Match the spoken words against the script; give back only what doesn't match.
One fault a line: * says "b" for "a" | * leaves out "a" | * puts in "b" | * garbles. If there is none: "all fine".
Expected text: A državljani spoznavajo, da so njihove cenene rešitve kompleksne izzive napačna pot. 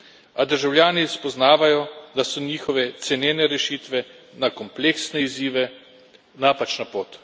* puts in "na"